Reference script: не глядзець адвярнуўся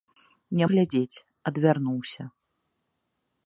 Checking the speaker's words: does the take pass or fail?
pass